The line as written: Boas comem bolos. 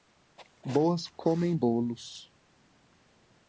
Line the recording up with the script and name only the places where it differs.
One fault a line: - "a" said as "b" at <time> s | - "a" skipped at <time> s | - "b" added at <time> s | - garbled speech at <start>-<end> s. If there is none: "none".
none